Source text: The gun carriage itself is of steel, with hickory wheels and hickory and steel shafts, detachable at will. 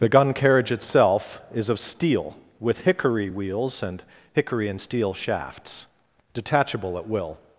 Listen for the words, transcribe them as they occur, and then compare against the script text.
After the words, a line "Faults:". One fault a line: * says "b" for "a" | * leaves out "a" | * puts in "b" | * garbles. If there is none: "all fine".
The gun carriage itself is of steel, with hickory wheels and hickory and steel shafts, detachable at will.
Faults:
all fine